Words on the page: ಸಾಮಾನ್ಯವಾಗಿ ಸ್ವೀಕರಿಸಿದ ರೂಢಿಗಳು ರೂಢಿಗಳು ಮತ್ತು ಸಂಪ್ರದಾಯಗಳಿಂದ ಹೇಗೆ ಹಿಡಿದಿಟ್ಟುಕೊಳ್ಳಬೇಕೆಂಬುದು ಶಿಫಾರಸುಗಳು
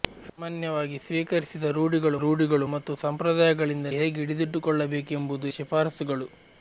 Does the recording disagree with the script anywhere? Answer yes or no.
no